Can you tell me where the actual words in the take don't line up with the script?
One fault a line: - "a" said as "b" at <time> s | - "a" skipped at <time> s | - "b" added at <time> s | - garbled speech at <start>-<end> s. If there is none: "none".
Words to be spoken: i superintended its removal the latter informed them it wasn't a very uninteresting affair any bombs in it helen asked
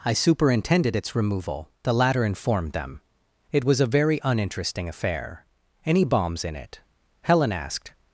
- "wasn't" said as "was" at 3.7 s